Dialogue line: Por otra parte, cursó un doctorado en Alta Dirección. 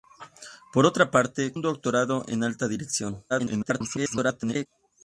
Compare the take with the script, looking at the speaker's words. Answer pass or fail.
fail